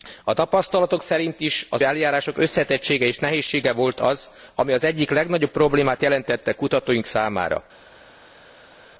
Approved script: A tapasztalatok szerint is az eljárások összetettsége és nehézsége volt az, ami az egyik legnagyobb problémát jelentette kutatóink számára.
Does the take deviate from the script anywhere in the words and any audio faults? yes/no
no